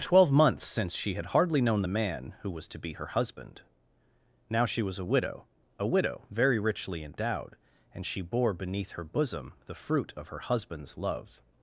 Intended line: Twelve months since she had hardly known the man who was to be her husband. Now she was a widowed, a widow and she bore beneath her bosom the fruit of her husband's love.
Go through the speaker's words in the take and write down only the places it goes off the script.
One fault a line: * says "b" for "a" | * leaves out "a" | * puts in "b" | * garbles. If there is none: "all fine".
* says "widow" for "widowed"
* puts in "very richly endowed"